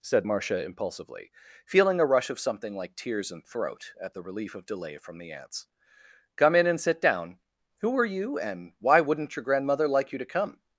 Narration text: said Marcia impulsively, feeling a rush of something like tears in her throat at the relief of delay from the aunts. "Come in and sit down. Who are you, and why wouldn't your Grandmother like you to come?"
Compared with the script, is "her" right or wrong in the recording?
wrong